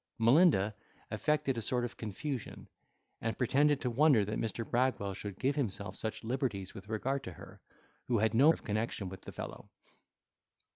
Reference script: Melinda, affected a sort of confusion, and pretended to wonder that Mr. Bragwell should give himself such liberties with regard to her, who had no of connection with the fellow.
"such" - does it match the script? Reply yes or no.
yes